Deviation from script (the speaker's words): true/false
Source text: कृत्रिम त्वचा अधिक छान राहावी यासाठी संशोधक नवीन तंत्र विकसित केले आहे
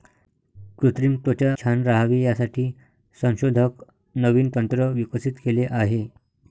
true